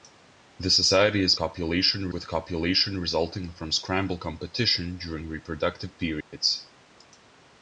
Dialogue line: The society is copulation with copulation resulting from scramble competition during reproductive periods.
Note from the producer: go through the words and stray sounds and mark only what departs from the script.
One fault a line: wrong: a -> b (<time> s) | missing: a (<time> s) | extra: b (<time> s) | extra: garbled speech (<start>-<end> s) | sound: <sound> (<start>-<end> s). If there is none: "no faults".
sound: dropout (6.2-6.3 s)